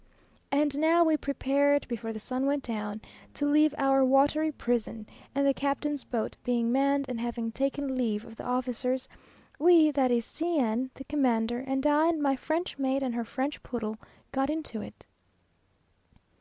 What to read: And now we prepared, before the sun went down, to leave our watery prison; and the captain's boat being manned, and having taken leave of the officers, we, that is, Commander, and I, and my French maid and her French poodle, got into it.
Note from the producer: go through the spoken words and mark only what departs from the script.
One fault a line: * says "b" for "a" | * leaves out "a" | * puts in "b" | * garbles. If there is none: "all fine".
* puts in "C n the"